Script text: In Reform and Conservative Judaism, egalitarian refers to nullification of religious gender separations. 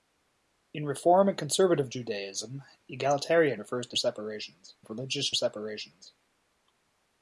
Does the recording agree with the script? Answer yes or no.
no